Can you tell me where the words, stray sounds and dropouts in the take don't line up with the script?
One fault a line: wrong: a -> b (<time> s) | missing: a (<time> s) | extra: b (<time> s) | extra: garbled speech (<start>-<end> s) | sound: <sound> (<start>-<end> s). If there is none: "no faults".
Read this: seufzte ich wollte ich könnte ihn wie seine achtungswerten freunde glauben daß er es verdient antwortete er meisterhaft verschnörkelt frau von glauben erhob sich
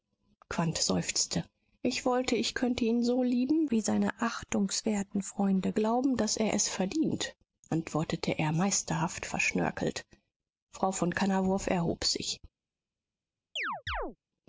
extra: so lieben (3.0 s)
wrong: glauben -> kannawurf (11.1 s)
sound: chirp (13.6-14.2 s)